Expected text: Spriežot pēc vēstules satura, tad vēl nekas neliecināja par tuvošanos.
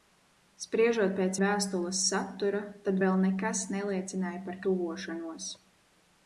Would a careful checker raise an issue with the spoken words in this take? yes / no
no